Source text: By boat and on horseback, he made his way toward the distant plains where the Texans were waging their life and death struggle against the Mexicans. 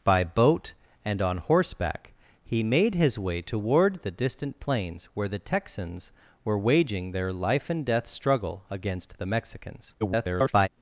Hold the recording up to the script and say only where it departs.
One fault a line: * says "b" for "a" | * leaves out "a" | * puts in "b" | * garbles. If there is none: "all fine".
* garbles